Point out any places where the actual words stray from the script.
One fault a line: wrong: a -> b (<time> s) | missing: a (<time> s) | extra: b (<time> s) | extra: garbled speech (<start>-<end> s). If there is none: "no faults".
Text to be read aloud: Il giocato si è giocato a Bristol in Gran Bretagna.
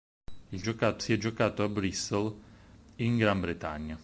no faults